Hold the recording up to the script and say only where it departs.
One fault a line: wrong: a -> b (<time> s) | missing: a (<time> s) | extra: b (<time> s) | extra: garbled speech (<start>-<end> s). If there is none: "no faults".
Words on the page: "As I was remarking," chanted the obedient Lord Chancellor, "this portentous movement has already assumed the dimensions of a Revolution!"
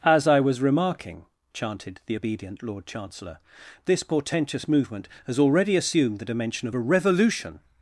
wrong: dimensions -> dimension (6.3 s)